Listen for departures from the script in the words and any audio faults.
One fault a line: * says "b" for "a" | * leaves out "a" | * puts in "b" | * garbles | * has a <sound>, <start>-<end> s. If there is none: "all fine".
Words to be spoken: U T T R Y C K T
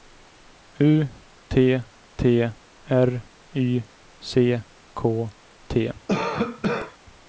* has a cough, 6.1-7.0 s